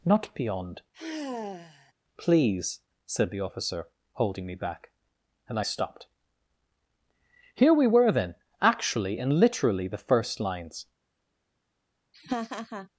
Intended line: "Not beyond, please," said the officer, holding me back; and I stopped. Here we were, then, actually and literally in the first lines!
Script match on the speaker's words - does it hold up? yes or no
no